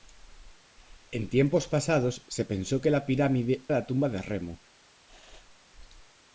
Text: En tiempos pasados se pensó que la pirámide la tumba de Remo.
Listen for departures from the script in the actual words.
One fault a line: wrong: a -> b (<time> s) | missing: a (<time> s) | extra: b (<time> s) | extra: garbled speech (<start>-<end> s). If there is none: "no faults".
no faults